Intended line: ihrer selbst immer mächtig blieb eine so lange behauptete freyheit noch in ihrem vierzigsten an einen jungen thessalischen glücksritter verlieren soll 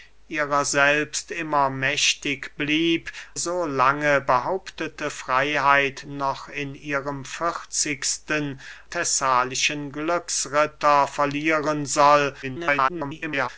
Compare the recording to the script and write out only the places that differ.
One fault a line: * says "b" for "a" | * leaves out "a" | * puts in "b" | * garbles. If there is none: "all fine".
* leaves out "eine"
* leaves out "an einen jungen"
* garbles